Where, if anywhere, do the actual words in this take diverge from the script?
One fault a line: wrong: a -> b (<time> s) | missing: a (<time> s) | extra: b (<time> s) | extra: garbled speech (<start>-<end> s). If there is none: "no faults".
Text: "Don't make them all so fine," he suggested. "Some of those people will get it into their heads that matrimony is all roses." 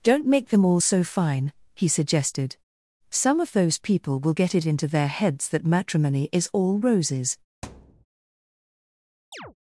no faults